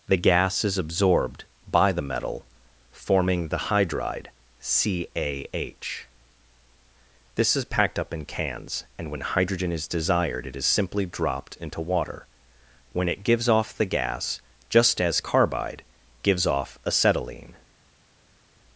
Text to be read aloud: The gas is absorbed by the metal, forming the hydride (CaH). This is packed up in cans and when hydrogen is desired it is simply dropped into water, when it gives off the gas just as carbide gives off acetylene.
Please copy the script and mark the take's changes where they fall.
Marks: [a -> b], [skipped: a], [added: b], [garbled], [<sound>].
The gas is absorbed by the metal, forming the hydride (CaH). This is packed up in cans and when hydrogen is desired it is simply dropped into water, when it gives off the gas just as carbide gives off acetylene.